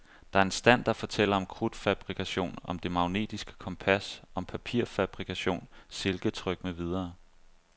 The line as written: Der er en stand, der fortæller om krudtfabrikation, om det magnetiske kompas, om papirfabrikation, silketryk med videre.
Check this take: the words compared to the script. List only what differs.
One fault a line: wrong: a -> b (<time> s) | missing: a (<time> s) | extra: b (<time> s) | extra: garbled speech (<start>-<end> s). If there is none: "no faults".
no faults